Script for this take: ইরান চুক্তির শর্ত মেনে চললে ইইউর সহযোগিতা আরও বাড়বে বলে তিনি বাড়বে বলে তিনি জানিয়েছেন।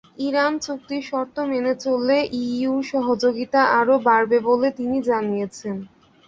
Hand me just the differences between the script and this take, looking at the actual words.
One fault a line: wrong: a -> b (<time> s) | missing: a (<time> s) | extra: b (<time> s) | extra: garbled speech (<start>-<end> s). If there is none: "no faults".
missing: বাড়বে বলে তিনি (5.0 s)